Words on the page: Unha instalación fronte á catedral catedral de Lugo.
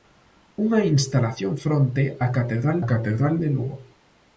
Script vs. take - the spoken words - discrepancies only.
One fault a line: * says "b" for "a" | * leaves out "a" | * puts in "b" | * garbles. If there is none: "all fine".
all fine